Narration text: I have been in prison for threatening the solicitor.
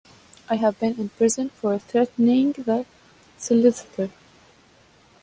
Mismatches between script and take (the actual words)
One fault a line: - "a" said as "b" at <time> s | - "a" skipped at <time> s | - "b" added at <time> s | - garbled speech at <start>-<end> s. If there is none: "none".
none